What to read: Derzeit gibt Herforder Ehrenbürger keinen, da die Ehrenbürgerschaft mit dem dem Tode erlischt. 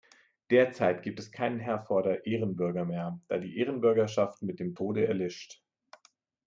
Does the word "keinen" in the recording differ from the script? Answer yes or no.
yes